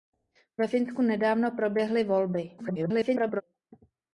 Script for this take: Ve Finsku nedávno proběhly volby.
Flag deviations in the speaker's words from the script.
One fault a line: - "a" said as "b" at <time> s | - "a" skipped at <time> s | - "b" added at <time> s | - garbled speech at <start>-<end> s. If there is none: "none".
- garbled speech at 2.6-3.4 s